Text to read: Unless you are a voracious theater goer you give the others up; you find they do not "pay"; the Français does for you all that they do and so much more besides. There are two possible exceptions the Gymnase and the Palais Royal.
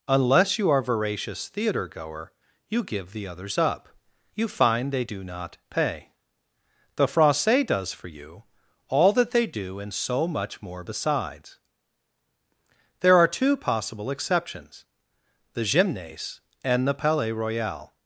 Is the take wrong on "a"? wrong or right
wrong